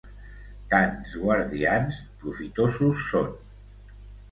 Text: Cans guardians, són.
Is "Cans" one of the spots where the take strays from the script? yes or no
no